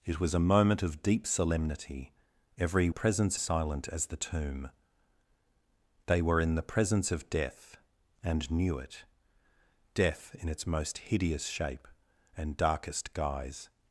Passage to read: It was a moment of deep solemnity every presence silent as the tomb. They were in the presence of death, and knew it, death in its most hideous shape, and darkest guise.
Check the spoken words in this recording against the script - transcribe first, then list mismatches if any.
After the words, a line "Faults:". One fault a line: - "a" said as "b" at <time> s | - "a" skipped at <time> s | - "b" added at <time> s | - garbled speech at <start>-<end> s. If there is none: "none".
It was a moment of deep solemnity every presence silent as the tomb. They were in the presence of death, and knew it, death in its most hideous shape, and darkest guise.
Faults:
none